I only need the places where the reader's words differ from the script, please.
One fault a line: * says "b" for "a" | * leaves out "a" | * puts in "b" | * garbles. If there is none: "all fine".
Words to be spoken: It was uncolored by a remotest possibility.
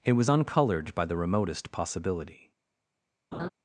* says "the" for "a"